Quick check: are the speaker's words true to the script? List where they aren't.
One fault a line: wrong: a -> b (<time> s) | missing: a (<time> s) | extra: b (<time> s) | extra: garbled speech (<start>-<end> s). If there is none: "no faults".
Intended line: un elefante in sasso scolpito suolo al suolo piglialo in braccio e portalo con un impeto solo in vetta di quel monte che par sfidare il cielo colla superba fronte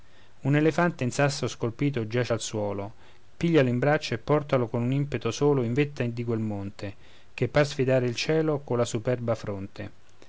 wrong: suolo -> giace (2.1 s)